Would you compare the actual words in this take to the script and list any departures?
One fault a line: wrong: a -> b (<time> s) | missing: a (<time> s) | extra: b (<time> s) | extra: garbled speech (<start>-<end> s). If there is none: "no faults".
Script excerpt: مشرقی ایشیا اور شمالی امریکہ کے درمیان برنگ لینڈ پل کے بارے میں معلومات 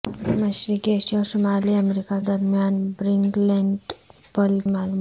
missing: کے (2.2 s)
missing: کے بارے میں (4.6 s)